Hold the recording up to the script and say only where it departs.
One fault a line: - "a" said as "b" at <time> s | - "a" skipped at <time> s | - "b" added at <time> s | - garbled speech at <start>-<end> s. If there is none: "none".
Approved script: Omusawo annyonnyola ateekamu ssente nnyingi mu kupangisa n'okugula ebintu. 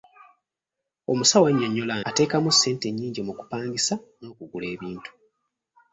none